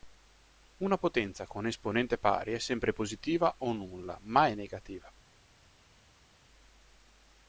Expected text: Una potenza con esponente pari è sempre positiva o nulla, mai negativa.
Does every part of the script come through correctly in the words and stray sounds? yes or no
yes